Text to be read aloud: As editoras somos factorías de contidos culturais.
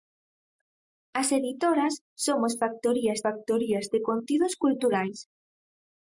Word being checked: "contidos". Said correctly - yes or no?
yes